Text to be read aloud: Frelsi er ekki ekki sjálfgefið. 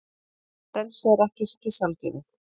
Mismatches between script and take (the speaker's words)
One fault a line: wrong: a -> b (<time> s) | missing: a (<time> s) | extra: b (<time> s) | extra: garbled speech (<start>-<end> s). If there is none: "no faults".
no faults